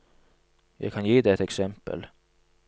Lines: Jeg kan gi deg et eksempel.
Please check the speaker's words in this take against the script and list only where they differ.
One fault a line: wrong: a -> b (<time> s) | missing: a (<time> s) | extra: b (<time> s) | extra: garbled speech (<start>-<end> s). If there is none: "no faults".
no faults